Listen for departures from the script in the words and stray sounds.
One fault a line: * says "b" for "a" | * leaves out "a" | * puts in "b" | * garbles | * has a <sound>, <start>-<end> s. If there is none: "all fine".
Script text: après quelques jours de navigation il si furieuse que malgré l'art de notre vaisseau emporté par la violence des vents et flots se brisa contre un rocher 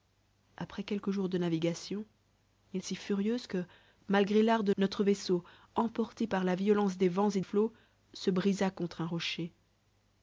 all fine